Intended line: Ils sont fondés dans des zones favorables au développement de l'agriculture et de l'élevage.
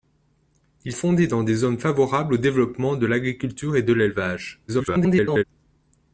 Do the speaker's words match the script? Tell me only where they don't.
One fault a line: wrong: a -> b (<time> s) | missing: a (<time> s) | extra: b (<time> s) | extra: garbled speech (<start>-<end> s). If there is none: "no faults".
missing: sont (0.9 s)
extra: garbled speech (4.7-5.4 s)